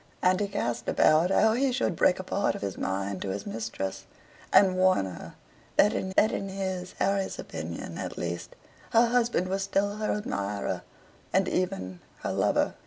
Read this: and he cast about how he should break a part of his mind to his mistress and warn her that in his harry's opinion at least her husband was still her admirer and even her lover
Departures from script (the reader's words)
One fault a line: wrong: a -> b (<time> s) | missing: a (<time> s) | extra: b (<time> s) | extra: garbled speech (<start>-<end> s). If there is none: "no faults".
extra: that in (6.1 s)